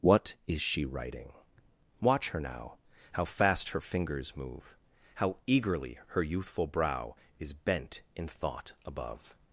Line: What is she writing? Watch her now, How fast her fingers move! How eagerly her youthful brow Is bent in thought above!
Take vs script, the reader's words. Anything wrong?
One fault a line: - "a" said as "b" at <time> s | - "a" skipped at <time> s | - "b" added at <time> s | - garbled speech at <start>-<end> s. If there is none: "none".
none